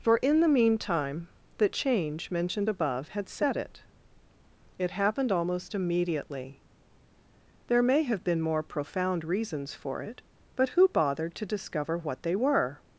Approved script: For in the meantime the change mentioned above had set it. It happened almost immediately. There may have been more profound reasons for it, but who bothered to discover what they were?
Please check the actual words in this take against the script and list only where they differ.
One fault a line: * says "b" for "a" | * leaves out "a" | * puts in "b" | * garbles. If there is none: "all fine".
all fine